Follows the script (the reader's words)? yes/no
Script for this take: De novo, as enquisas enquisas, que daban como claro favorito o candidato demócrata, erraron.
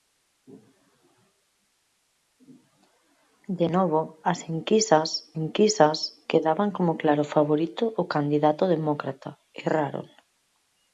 yes